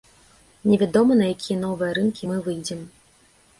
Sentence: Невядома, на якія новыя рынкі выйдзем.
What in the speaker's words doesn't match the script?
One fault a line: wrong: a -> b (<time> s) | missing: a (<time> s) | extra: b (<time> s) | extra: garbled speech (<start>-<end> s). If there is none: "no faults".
extra: мы (2.3 s)